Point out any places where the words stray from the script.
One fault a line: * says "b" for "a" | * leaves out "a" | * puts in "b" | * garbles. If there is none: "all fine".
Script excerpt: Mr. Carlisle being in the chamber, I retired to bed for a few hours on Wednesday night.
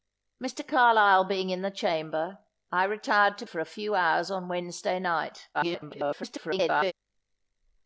* leaves out "bed"
* garbles